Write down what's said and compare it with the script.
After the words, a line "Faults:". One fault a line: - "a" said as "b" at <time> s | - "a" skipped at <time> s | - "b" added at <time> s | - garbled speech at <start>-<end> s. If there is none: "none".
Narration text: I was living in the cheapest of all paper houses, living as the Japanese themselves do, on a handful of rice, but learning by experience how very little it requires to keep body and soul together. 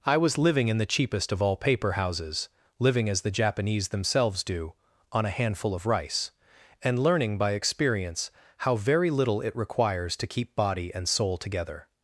I was living in the cheapest of all paper houses, living as the Japanese themselves do, on a handful of rice, and learning by experience how very little it requires to keep body and soul together.
Faults:
- "but" said as "and" at 6.8 s